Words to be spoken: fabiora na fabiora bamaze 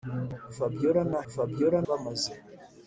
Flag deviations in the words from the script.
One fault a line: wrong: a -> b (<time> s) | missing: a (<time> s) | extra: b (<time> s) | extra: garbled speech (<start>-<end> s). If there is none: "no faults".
no faults